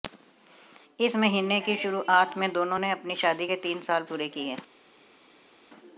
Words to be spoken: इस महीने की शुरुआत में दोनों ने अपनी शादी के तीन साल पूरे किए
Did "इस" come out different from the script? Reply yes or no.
no